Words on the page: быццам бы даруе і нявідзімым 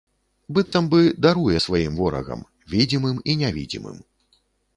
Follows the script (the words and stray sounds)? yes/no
no